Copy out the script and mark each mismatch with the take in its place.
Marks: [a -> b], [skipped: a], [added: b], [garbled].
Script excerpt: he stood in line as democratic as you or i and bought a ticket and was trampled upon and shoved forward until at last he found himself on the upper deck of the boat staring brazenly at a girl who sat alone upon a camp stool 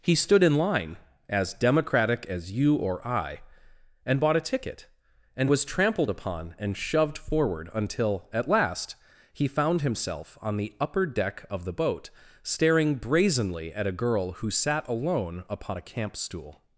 he stood in line as democratic as you or i and bought a ticket and was trampled upon and shoved forward until at last he found himself on the upper deck of the boat staring brazenly at a girl who sat alone upon a camp stool